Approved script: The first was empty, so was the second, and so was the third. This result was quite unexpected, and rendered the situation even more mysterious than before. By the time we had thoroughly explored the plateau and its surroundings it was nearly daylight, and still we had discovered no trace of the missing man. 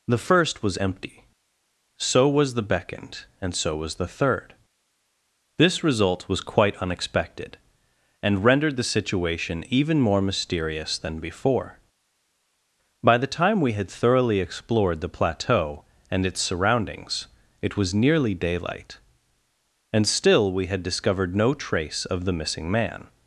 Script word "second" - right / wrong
wrong